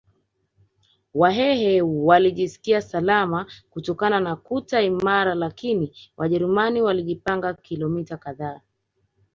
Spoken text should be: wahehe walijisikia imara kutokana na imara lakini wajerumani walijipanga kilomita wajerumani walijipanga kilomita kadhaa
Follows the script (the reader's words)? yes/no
no